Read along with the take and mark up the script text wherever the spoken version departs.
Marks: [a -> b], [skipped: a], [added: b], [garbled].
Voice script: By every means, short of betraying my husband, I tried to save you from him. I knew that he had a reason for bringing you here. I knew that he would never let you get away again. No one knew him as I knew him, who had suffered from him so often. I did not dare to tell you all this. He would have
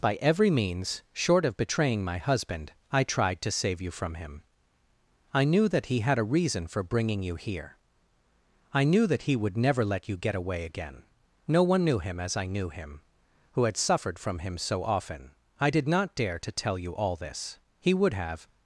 By every means, short of betraying my husband, I tried to save you from him. I knew that he had a reason for bringing you here. I knew that he would never let you get away again. No one knew him as I knew him, who had suffered from him so often. I did not dare to tell you all this. He would have